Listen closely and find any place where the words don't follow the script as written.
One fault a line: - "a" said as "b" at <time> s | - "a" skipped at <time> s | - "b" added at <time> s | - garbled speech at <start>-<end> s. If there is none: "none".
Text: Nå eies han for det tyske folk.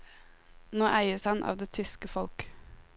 - "for" said as "av" at 1.4 s